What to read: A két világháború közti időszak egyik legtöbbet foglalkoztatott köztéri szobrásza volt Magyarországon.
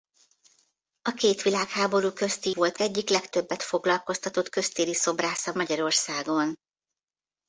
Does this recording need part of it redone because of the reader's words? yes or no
yes